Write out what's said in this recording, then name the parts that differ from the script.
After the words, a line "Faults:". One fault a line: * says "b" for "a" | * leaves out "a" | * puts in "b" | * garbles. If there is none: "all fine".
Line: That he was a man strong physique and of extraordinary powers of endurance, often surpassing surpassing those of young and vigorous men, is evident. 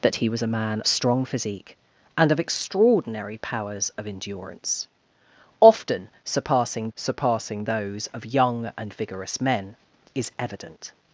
That he was a man strong physique and of extraordinary powers of endurance, often surpassing surpassing those of young and vigorous men, is evident.
Faults:
all fine